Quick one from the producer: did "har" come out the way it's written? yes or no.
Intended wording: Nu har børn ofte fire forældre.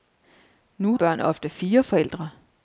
no